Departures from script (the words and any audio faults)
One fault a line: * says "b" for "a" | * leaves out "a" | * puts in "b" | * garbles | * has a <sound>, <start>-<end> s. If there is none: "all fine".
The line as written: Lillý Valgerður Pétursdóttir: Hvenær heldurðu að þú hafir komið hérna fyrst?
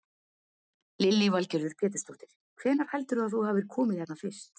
all fine